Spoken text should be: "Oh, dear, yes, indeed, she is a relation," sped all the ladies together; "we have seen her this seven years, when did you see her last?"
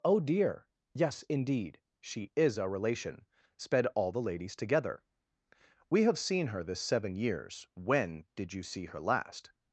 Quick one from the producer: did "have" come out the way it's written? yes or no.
yes